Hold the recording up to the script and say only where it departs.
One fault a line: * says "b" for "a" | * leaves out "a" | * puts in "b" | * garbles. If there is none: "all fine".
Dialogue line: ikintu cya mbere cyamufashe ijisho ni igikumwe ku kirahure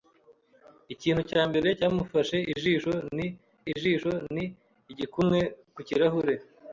* puts in "ijisho ni"